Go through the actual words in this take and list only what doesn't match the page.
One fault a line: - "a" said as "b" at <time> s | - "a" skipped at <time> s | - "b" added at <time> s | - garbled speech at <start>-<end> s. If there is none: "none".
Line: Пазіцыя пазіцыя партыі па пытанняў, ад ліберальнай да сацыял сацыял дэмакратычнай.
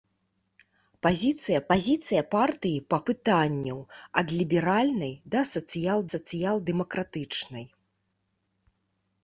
none